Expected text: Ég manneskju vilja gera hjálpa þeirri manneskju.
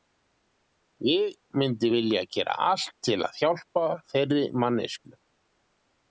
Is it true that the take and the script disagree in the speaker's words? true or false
true